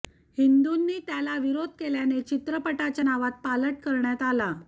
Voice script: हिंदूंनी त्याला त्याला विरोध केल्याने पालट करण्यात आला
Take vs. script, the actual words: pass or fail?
fail